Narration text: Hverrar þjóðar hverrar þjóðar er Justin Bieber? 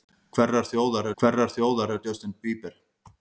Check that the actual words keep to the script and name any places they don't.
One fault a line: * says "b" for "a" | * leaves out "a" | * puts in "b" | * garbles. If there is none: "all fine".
all fine